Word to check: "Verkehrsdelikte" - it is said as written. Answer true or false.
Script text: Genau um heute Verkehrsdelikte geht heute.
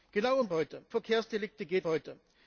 true